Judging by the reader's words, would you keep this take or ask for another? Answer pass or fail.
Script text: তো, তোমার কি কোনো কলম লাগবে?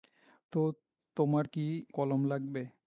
fail